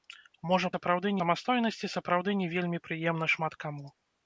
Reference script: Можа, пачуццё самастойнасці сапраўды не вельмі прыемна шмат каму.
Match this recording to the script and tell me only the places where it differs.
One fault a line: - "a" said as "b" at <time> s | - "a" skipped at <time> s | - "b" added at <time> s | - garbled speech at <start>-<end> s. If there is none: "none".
- "пачуццё" said as "сапраўды" at 0.7 s